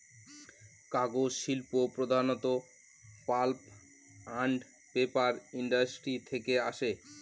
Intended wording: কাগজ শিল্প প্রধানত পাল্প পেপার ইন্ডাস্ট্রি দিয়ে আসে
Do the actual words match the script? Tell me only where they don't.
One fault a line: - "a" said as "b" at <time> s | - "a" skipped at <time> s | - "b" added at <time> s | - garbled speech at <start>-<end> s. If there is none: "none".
- "আন্ড" added at 4.4 s
- "দিয়ে" said as "থেকে" at 6.3 s